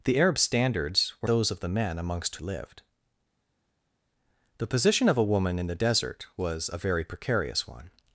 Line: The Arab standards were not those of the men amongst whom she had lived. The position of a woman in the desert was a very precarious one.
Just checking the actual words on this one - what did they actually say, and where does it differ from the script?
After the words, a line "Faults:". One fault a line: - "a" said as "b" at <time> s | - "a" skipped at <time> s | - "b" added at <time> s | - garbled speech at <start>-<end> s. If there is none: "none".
The Arab standards were those of the men amongst lived. The position of a woman in the desert was a very precarious one.
Faults:
- "not" skipped at 1.3 s
- "whom she had" skipped at 2.4 s